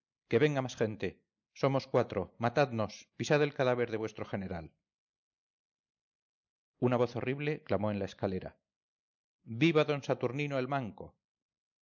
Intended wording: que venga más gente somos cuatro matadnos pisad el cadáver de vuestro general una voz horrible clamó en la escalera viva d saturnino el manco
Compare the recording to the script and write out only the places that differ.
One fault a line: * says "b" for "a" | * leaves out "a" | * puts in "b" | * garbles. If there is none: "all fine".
all fine